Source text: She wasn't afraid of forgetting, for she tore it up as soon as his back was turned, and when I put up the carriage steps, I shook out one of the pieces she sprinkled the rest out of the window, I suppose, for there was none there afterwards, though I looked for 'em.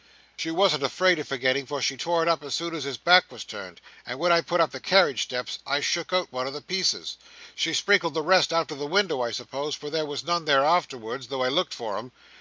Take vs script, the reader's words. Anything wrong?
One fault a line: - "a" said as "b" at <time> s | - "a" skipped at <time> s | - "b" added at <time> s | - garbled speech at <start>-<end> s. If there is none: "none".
none